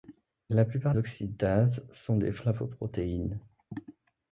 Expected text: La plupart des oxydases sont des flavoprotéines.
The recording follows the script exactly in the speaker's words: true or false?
false